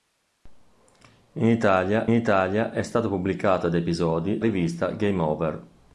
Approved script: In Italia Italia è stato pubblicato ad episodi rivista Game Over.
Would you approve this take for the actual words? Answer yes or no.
yes